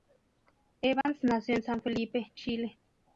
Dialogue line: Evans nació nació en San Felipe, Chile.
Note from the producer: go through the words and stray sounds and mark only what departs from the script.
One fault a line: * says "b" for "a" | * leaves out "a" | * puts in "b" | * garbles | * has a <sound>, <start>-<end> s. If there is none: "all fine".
* has a dropout, 1.0-1.1 s
* leaves out "nació"